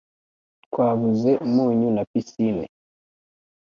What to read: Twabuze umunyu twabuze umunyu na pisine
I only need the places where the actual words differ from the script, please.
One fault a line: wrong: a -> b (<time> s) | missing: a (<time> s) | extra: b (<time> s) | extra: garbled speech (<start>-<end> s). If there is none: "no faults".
missing: twabuze umunyu (1.9 s)